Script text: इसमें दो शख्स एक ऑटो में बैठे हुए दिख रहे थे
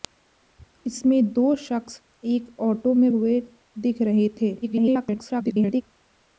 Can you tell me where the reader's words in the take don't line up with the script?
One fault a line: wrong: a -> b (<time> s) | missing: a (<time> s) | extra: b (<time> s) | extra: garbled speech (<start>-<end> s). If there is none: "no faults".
missing: बैठे (3.1 s)
extra: garbled speech (4.6-5.8 s)